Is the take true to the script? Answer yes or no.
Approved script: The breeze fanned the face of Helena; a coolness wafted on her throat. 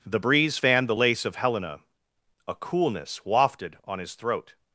no